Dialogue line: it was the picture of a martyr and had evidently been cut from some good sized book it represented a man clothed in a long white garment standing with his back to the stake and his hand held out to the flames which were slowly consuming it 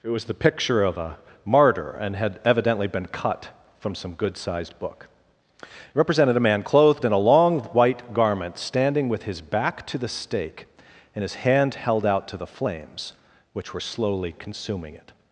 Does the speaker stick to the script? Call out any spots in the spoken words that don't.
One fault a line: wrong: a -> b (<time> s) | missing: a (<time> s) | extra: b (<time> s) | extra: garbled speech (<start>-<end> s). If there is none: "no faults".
no faults